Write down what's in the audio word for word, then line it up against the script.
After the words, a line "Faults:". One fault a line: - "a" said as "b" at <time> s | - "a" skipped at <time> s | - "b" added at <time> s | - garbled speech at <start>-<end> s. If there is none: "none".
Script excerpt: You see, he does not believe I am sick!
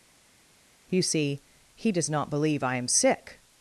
You see, he does not believe I am sick!
Faults:
none